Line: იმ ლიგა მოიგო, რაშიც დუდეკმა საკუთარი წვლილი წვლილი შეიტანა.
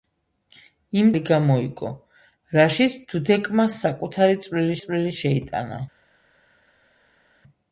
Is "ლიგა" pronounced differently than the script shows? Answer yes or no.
no